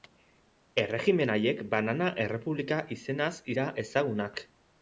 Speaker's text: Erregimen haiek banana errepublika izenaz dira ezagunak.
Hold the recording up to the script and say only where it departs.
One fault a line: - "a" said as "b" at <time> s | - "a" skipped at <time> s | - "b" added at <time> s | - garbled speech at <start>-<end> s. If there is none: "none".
none